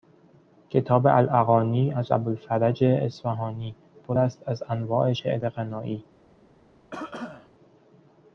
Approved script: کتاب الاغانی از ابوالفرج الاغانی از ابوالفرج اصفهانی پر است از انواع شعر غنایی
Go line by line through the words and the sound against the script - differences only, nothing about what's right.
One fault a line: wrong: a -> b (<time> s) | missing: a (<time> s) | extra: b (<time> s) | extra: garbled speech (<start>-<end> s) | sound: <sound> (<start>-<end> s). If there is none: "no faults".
missing: الاغانی از ابوالفرج (2.8 s)
sound: cough (6.9-7.5 s)